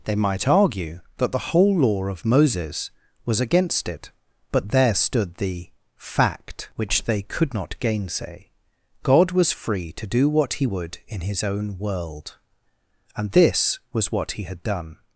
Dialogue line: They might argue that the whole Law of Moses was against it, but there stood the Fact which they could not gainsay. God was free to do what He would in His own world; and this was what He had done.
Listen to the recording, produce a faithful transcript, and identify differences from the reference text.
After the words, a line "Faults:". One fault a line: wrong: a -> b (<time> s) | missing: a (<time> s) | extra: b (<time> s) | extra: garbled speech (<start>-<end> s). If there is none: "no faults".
They might argue that the whole Law of Moses was against it, but there stood the Fact which they could not gainsay. God was free to do what He would in His own world; and this was what He had done.
Faults:
no faults